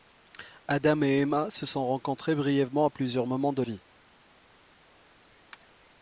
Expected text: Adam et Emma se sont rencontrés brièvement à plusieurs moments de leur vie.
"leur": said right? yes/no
no